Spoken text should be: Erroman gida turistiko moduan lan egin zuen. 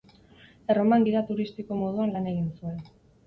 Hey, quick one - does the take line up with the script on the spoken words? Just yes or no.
yes